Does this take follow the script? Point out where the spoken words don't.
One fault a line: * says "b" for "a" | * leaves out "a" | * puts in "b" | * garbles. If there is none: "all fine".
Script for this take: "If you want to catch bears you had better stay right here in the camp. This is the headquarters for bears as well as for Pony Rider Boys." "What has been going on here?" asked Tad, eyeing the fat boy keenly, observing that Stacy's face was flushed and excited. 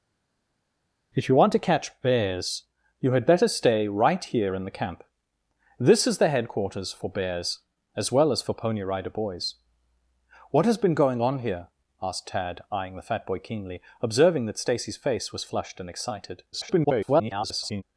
* garbles